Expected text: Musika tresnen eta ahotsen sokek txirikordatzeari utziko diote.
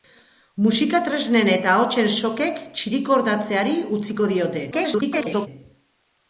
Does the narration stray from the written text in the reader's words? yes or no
yes